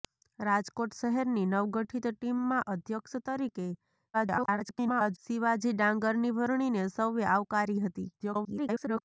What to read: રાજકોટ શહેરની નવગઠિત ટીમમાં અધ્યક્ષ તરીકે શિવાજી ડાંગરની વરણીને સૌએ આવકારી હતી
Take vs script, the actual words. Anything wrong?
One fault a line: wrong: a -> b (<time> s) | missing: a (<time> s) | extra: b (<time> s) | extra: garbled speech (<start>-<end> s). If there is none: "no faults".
extra: garbled speech (4.1-5.2 s)
extra: garbled speech (8.2-9.0 s)